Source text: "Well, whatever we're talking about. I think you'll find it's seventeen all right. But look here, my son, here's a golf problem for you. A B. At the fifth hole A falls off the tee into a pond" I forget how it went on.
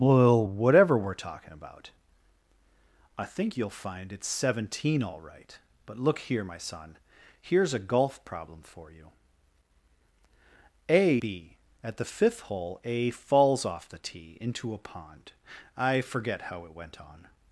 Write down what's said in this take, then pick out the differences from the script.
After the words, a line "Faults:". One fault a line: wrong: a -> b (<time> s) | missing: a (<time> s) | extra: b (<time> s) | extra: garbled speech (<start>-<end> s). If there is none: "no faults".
"Well, whatever we're talking about. I think you'll find it's seventeen all right. But look here, my son, here's a golf problem for you. A B. At the fifth hole A falls off the tee into a pond" I forget how it went on.
Faults:
no faults